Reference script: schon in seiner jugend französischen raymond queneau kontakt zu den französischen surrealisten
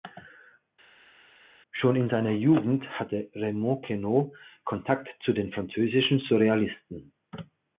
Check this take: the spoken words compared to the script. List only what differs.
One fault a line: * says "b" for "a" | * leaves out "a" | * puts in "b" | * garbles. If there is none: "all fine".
* says "hatte" for "französischen"